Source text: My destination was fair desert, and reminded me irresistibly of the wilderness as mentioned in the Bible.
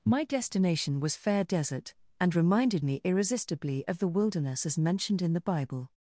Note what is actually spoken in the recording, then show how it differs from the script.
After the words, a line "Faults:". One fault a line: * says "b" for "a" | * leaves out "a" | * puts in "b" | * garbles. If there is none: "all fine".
My destination was fair desert, and reminded me irresistibly of the wilderness as mentioned in the Bible.
Faults:
all fine